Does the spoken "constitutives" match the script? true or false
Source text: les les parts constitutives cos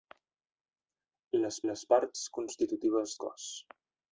true